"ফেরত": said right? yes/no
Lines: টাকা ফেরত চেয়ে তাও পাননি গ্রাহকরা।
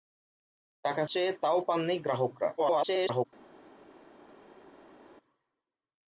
no